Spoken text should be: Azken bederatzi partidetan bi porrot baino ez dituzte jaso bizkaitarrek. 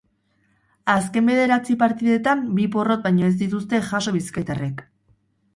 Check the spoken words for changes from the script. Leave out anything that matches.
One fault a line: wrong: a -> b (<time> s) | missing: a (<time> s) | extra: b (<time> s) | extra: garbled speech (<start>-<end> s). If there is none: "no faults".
no faults